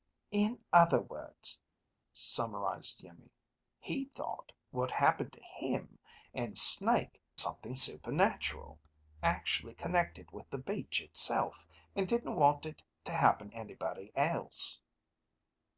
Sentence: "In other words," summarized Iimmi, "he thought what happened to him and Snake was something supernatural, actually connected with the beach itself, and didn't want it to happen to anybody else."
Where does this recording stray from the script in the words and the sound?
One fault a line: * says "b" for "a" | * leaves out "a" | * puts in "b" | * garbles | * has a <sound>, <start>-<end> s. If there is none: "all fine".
* leaves out "was"
* leaves out "to"